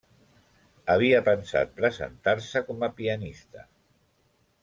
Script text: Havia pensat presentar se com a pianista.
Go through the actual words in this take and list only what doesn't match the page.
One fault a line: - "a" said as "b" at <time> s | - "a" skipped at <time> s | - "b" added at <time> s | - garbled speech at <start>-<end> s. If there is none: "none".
none